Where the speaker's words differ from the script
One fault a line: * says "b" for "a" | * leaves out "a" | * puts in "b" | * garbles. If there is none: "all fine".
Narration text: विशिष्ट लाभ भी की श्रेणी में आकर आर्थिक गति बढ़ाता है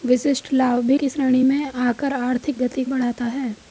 all fine